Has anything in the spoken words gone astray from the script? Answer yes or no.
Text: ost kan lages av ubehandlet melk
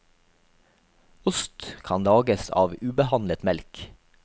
no